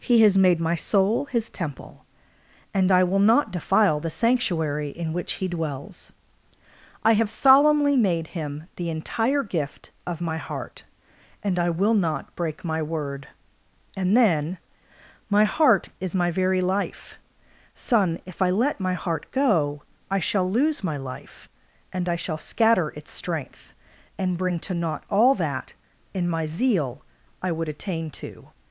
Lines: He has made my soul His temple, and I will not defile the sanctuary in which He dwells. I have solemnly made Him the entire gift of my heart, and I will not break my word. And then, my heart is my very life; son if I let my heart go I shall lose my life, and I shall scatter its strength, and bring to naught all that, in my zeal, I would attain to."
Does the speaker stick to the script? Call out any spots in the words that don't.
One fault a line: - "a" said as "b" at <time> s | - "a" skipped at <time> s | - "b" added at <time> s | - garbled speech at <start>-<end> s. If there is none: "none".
none